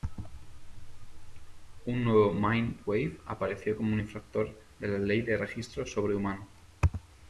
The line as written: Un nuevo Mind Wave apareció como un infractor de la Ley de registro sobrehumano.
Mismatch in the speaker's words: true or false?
false